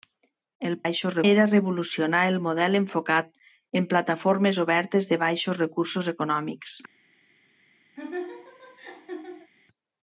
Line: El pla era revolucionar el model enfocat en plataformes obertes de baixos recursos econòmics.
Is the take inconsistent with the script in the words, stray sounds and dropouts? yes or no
yes